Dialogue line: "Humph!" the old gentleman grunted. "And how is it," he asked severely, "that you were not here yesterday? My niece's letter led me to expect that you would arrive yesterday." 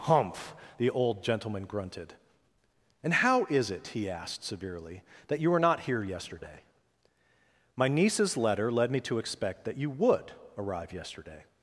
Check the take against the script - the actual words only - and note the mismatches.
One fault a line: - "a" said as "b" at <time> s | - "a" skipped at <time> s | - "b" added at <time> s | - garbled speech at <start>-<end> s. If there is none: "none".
none